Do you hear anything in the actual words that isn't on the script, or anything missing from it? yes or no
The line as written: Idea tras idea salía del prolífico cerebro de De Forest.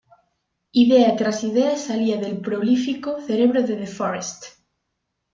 no